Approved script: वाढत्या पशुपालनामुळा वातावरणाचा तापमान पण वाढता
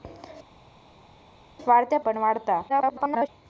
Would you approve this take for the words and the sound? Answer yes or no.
no